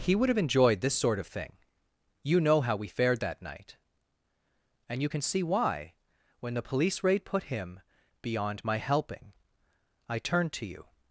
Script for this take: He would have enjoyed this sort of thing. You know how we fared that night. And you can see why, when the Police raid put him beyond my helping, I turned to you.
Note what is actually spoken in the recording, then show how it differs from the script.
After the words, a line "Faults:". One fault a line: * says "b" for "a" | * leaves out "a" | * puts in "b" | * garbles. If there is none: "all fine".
He would have enjoyed this sort of thing. You know how we fared that night. And you can see why, when the Police raid put him beyond my helping, I turned to you.
Faults:
all fine